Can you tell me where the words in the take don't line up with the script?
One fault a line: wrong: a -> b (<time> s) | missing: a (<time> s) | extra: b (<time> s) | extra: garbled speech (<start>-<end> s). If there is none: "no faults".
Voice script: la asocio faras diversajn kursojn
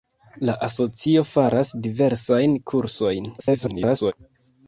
extra: garbled speech (3.4-4.1 s)